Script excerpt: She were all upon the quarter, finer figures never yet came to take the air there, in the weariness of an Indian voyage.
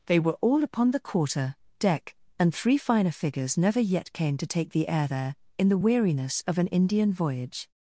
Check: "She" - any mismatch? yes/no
yes